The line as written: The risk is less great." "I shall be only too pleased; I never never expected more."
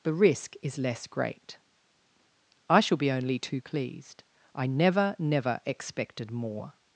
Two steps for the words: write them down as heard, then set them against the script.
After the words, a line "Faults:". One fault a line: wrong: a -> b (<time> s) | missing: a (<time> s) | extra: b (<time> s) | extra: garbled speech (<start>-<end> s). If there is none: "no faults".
The risk is less great." "I shall be only too pleased; I never never expected more."
Faults:
no faults